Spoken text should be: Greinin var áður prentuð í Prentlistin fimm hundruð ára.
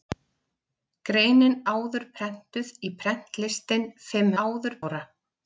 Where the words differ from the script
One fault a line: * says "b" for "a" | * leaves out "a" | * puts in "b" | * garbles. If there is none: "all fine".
* leaves out "var"
* says "áður" for "hundruð"